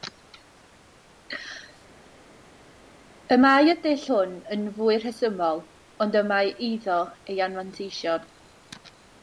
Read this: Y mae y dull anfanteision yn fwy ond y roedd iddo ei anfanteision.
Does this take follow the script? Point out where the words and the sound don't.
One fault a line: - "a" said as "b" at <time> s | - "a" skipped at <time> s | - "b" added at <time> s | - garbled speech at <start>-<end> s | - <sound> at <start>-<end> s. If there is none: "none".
- "anfanteision" said as "hwn" at 4.1 s
- "rhesymol" added at 5.0 s
- "roedd" said as "mae" at 6.3 s